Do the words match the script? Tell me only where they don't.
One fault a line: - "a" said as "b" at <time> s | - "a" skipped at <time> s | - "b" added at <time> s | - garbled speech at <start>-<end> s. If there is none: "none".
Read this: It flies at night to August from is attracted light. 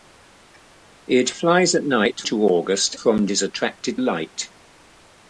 none